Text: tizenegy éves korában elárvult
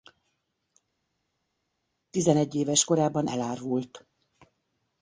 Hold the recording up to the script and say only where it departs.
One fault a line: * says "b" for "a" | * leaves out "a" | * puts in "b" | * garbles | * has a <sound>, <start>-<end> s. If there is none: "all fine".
all fine